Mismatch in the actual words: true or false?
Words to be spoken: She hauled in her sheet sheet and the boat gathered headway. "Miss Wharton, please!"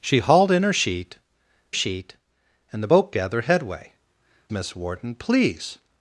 false